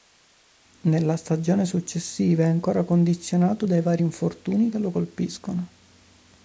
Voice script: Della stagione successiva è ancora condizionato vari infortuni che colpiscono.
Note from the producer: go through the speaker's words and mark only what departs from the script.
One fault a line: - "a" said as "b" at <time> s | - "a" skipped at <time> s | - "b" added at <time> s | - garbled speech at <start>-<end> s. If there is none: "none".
- "Della" said as "Nella" at 0.8 s
- "dai" added at 3.6 s
- "lo" added at 4.8 s